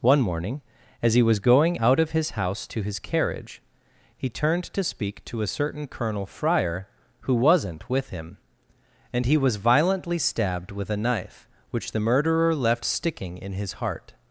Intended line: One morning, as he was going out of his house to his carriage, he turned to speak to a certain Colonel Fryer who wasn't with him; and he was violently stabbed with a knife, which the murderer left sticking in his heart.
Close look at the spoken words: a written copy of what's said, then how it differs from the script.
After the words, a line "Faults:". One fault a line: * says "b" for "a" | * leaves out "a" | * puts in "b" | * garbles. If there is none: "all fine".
One morning, as he was going out of his house to his carriage, he turned to speak to a certain Colonel Fryer who wasn't with him; and he was violently stabbed with a knife, which the murderer left sticking in his heart.
Faults:
all fine